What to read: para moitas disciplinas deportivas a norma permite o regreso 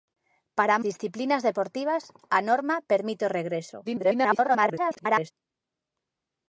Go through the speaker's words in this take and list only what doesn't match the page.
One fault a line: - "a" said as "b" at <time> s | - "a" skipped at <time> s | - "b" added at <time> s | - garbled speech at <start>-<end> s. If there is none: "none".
- "moitas" skipped at 0.8 s
- garbled speech at 3.8-5.3 s